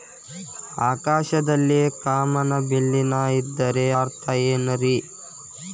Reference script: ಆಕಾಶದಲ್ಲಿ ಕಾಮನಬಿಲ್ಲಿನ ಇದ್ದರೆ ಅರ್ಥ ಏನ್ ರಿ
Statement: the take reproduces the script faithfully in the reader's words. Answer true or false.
true